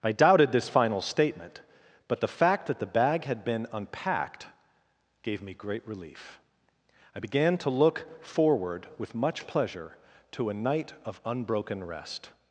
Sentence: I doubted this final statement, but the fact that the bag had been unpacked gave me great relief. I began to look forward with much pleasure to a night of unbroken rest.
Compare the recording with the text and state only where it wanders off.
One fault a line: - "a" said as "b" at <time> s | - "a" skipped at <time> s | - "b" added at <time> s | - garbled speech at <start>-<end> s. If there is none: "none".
none